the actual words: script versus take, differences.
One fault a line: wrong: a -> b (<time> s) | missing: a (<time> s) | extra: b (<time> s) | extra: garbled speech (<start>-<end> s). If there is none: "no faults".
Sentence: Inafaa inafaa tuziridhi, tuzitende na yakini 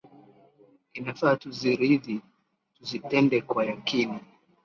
missing: inafaa (1.4 s)
wrong: na -> kwa (3.4 s)